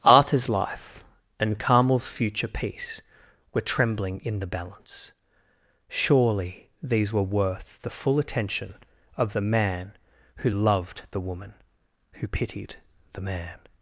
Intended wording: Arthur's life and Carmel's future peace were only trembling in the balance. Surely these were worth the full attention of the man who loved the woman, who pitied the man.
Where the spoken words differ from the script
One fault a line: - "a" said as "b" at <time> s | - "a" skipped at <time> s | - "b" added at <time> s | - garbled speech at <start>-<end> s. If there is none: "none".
- "only" skipped at 3.6 s